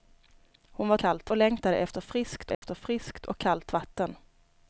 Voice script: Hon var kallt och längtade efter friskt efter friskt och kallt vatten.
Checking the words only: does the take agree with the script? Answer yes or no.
yes